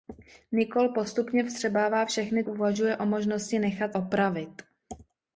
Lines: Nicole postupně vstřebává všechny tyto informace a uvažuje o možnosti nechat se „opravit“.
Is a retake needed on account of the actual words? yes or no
yes